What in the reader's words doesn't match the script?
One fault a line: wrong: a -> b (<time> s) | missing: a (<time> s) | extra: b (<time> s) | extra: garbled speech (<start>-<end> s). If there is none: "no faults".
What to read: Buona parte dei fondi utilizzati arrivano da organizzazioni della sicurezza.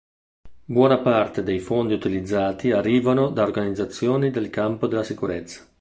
extra: del campo (4.3 s)